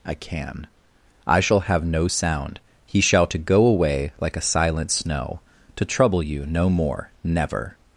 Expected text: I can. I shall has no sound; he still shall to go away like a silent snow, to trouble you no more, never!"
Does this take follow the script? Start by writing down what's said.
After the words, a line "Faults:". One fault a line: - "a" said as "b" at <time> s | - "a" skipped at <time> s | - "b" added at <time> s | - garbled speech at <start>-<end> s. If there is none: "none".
I can. I shall have no sound; he shall to go away like a silent snow, to trouble you no more, never!"
Faults:
- "has" said as "have" at 1.6 s
- "still" skipped at 3.0 s